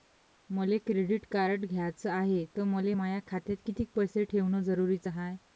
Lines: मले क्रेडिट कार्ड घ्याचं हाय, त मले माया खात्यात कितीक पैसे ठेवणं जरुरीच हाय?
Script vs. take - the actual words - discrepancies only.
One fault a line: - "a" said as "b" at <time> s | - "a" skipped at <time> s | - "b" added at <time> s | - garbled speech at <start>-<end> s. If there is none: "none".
none